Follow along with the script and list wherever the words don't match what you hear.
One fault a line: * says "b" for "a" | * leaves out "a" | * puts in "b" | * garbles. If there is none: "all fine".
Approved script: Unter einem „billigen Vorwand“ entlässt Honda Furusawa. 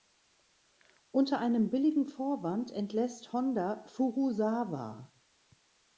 all fine